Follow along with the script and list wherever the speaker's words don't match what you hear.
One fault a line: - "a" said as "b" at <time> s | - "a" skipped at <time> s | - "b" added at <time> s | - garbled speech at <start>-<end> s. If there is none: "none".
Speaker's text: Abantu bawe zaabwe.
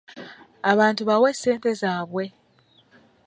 - "ssente" added at 1.4 s